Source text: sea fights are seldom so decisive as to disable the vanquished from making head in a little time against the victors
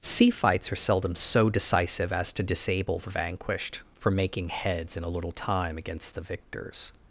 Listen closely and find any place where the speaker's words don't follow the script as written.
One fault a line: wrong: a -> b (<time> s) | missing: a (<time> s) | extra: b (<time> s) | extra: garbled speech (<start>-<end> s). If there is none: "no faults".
wrong: head -> heads (4.5 s)